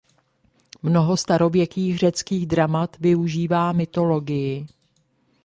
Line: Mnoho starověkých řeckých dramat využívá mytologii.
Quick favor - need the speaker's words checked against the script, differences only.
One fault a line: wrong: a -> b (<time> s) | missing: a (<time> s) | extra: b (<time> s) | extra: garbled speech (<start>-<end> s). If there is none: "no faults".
no faults